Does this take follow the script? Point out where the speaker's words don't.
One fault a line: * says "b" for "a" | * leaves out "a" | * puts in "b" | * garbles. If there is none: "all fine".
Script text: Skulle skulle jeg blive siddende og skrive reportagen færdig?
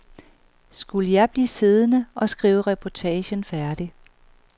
* leaves out "skulle"